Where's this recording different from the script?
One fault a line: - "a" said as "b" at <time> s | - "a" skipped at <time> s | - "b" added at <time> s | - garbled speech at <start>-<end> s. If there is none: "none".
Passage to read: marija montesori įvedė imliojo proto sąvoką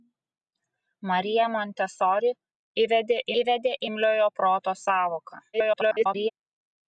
- "įvedė" added at 3.4 s
- garbled speech at 5.5-6.3 s